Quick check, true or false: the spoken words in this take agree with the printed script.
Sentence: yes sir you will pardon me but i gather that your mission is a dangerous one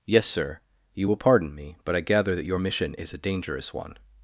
true